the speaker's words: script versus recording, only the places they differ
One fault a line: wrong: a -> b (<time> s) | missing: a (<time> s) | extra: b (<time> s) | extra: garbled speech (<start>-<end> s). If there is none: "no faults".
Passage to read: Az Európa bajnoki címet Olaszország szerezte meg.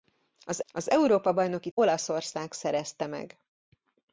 extra: az (0.7 s)
missing: címet (1.7 s)